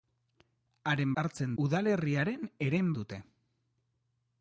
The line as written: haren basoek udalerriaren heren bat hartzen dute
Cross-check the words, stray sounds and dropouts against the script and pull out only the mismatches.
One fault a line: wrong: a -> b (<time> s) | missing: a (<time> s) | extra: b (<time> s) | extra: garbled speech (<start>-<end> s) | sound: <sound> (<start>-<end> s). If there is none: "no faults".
wrong: basoek -> hartzen (1.2 s)
missing: bat hartzen (2.9 s)